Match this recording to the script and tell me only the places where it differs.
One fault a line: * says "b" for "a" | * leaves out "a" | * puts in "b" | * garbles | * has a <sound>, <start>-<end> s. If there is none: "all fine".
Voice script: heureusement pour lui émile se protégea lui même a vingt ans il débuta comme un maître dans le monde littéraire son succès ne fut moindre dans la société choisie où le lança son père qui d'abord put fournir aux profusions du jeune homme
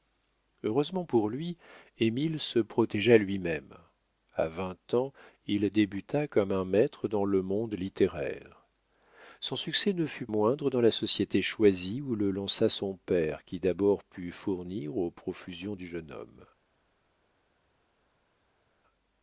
all fine